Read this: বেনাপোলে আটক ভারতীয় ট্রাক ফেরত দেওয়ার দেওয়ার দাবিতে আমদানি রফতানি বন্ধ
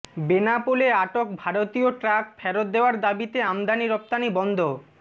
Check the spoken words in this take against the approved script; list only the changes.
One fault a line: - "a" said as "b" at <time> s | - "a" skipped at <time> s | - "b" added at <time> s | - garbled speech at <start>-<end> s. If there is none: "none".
- "দেওয়ার" skipped at 3.0 s